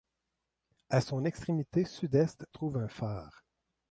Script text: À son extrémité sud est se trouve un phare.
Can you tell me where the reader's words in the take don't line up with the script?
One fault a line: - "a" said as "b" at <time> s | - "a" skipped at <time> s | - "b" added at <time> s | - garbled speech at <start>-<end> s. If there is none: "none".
- "se" skipped at 2.5 s